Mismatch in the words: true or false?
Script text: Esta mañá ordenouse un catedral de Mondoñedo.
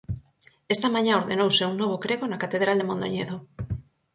true